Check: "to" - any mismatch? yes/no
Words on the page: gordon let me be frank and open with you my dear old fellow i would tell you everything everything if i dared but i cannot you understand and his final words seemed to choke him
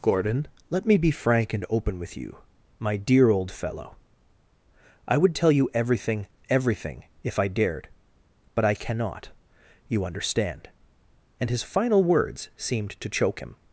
no